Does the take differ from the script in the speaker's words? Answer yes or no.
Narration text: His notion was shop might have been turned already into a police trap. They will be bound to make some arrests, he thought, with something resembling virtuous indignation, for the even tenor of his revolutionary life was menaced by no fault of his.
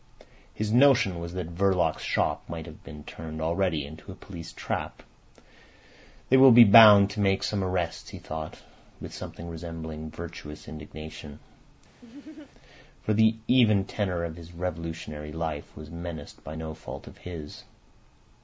yes